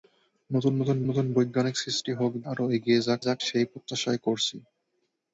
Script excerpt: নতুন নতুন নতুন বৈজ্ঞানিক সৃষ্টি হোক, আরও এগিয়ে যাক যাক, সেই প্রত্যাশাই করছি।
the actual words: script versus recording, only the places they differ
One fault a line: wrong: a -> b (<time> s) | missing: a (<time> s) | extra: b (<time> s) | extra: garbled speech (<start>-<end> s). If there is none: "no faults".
no faults